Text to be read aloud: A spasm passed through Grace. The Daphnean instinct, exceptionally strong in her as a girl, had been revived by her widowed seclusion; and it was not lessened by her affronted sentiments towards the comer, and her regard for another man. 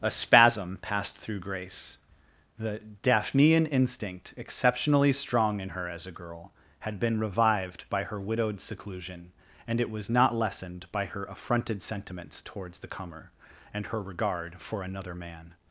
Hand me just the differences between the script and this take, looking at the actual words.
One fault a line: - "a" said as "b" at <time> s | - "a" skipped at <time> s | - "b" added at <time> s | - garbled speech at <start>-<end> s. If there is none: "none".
none